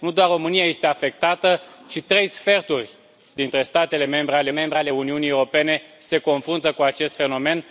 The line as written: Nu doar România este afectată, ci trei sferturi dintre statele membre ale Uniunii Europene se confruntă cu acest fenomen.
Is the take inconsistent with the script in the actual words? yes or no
yes